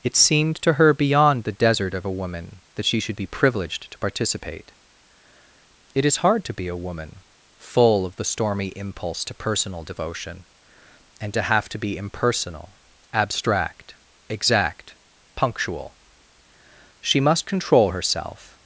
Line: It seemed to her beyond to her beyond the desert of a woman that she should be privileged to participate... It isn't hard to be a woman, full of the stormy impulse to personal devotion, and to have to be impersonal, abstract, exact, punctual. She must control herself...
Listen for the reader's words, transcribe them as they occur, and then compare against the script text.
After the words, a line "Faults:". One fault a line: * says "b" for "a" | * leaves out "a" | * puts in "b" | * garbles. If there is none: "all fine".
It seemed to her beyond the desert of a woman that she should be privileged to participate... It is hard to be a woman, full of the stormy impulse to personal devotion, and to have to be impersonal, abstract, exact, punctual. She must control herself...
Faults:
* leaves out "to her beyond"
* says "is" for "isn't"